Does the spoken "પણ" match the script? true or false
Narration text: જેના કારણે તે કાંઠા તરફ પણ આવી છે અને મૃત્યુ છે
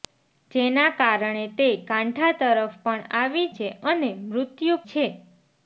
true